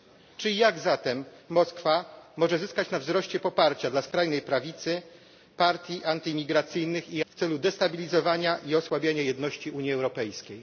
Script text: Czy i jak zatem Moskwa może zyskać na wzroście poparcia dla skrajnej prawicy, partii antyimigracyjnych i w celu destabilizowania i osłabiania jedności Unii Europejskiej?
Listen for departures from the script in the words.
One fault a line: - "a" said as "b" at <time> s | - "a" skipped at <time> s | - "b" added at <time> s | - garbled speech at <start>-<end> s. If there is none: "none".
none